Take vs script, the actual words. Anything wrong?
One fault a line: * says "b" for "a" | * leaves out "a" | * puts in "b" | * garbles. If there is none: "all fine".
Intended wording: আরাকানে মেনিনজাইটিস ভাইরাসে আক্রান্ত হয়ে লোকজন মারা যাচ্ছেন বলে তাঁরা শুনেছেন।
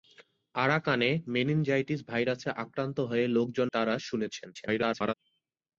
* leaves out "মারা যাচ্ছেন বলে"
* garbles